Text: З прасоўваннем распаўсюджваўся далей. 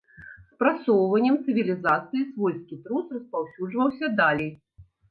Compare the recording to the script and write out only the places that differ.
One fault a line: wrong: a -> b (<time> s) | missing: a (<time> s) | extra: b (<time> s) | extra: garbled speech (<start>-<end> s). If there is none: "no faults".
extra: цывілізацыі свойскі трус (1.4 s)